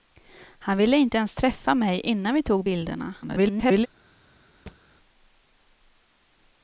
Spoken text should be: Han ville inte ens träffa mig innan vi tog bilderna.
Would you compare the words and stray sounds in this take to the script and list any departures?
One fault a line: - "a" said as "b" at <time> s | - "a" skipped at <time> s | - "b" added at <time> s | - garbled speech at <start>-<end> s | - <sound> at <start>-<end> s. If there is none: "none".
- garbled speech at 3.2-3.9 s
- thud at 4.7-4.8 s